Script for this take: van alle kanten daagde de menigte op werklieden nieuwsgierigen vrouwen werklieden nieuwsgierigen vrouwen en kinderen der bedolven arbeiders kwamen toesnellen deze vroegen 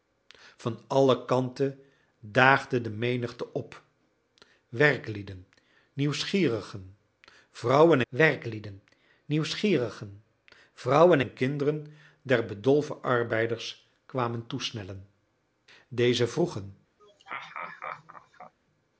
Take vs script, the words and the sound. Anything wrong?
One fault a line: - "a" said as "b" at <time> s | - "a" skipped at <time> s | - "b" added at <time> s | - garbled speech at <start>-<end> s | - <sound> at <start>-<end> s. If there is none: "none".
- laugh at 17.0-18.5 s